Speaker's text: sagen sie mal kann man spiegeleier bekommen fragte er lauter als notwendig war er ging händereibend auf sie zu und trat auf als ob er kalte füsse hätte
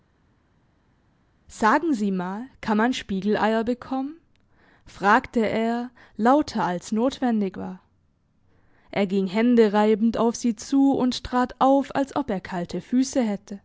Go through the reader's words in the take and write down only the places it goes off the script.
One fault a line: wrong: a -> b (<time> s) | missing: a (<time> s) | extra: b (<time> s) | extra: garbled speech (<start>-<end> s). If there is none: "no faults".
no faults